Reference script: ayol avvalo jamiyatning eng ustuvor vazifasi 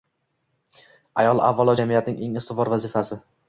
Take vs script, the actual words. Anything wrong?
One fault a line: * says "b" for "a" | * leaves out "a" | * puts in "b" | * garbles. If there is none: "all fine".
all fine